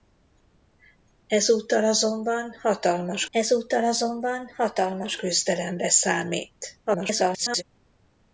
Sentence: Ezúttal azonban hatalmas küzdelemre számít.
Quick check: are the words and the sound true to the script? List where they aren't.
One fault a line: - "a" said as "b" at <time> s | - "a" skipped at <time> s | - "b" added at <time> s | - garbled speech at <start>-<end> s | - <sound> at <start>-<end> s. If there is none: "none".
- "ezúttal azonban hatalmas" added at 3.3 s
- garbled speech at 6.9-7.6 s